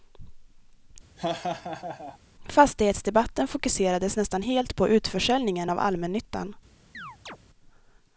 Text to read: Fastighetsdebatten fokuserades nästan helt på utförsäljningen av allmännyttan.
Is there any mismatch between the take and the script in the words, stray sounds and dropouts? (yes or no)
yes